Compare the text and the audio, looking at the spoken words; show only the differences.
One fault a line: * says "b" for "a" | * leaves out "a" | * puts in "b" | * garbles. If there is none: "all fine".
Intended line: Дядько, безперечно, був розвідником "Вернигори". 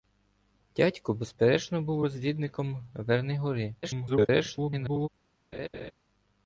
* garbles